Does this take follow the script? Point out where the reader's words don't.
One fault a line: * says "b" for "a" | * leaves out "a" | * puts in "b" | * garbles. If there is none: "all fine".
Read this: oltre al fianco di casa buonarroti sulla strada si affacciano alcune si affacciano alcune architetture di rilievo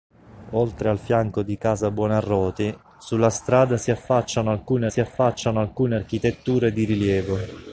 all fine